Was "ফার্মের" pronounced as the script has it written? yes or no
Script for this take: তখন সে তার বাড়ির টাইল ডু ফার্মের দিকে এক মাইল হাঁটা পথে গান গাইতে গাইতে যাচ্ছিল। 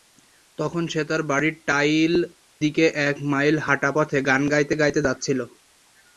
no